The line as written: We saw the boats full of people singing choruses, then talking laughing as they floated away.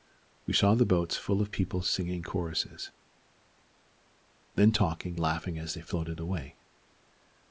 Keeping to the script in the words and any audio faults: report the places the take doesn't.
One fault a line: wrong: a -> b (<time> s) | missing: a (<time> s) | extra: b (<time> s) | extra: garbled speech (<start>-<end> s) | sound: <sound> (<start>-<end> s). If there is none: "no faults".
no faults